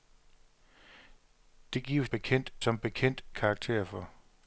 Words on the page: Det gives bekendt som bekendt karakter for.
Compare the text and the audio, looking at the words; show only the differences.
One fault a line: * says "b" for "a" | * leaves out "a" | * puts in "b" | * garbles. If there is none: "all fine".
all fine